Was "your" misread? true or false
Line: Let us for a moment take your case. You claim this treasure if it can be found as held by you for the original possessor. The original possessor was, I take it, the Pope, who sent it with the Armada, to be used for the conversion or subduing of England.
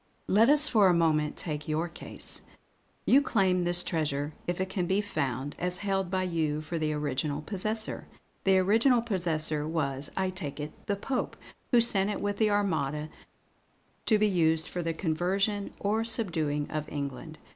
false